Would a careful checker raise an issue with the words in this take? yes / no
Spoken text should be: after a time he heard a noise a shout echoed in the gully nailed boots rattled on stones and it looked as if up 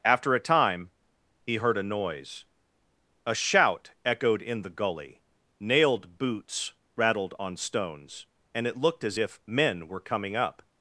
yes